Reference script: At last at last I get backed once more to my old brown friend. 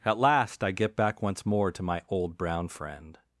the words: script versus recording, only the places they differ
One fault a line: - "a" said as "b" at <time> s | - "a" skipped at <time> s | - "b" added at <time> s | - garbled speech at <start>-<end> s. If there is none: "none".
- "at last" skipped at 0.6 s
- "backed" said as "back" at 0.9 s